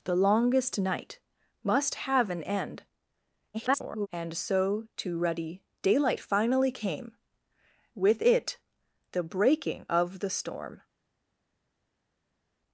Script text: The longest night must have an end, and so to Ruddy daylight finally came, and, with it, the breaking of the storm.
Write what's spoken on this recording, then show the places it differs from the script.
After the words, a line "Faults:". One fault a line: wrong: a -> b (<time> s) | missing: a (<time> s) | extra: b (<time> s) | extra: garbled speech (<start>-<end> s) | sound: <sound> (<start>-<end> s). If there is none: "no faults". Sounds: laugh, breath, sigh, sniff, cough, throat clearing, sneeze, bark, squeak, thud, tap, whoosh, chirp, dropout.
The longest night must have an end, [garbled] and so to Ruddy daylight finally came, with it, the breaking of the storm.
Faults:
extra: garbled speech (3.5-4.1 s)
missing: and (7.1 s)